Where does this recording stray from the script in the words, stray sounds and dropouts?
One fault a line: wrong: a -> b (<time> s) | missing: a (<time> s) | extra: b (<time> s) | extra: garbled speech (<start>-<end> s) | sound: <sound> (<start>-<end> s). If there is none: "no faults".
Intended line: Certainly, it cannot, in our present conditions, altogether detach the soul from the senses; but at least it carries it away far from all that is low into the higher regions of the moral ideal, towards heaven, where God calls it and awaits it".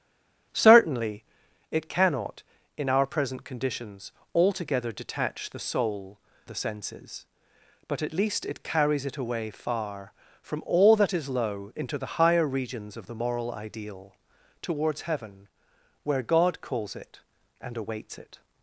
missing: from (6.2 s)